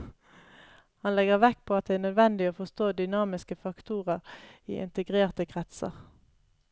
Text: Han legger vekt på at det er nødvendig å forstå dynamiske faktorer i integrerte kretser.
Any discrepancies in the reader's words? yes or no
no